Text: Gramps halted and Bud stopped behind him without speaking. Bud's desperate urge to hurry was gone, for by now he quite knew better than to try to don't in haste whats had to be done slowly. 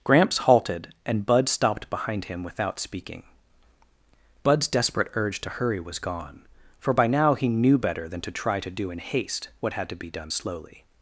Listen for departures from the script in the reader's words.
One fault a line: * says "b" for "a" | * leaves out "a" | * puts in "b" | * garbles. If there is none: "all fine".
* leaves out "quite"
* says "do" for "don't"
* says "what" for "whats"